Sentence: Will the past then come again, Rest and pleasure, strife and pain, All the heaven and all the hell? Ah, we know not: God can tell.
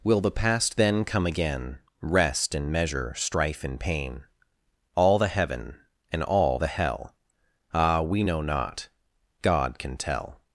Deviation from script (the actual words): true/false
true